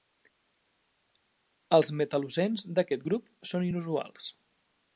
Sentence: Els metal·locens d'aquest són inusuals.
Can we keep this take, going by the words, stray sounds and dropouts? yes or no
no